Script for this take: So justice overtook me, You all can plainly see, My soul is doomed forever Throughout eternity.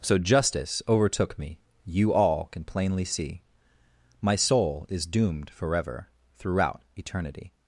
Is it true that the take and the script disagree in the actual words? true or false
false